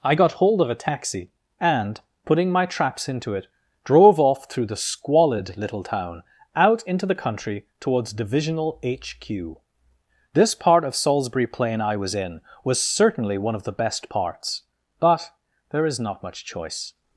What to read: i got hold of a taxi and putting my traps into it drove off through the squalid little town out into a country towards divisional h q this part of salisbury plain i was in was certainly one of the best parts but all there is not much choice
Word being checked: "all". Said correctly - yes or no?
no